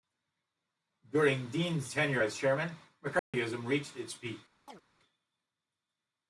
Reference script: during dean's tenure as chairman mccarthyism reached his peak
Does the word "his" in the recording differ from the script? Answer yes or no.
yes